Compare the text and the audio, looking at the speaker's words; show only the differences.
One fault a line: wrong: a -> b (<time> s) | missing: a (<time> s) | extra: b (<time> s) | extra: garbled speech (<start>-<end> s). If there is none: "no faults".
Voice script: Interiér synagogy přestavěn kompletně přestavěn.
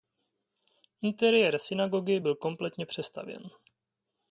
wrong: přestavěn -> byl (2.2 s)